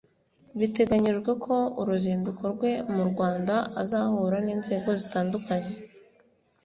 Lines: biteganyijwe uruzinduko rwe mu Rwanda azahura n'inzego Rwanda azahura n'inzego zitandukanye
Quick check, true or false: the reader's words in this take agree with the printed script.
false